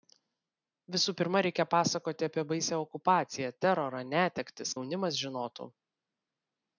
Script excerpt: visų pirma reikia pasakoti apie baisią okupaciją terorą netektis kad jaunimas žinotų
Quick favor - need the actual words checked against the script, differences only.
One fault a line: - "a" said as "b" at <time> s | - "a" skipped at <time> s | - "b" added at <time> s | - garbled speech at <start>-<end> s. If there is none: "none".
- "kad" skipped at 4.8 s